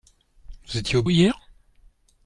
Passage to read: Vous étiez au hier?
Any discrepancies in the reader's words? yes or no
no